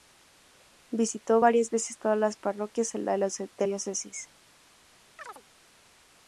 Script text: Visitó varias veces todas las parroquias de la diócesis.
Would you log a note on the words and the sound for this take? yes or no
yes